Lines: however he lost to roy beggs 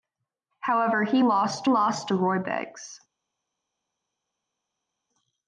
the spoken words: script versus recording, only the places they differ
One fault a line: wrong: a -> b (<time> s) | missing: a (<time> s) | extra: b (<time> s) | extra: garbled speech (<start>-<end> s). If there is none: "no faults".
extra: lost (1.7 s)